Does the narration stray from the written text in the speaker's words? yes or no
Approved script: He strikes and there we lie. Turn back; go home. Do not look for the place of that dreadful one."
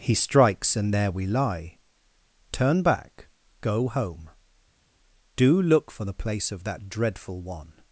yes